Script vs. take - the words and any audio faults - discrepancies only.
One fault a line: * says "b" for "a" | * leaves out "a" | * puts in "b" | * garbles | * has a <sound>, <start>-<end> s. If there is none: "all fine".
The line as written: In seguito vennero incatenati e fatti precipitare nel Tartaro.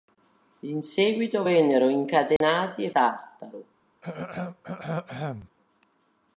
* has a dropout, 2.4-2.4 s
* leaves out "fatti precipitare nel"
* has a throat clearing, 4.0-5.5 s